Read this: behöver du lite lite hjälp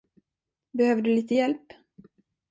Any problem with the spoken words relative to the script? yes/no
yes